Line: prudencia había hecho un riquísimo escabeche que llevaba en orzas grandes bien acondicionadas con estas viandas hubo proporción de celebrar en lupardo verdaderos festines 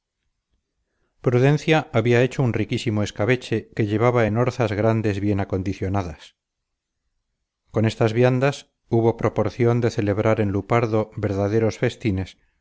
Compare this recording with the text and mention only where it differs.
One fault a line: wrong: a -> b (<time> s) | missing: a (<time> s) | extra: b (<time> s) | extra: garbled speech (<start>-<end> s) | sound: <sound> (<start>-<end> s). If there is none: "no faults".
no faults